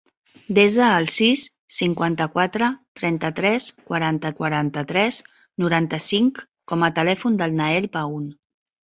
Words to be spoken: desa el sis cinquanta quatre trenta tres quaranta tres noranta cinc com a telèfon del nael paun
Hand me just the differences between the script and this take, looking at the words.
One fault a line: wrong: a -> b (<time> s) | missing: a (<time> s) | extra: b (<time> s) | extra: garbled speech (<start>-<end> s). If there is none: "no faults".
extra: quaranta (4.4 s)